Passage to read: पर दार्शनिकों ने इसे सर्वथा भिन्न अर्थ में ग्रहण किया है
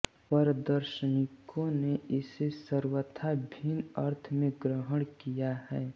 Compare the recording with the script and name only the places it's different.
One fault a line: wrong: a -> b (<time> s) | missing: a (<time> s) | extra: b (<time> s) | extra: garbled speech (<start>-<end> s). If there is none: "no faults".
no faults